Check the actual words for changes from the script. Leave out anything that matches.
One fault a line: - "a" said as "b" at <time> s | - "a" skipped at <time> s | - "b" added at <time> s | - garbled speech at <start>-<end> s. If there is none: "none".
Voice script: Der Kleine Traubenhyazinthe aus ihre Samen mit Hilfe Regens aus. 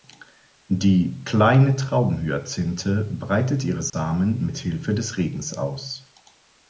- "Der" said as "Die" at 0.7 s
- "aus" said as "breitet" at 3.0 s
- "des" added at 4.9 s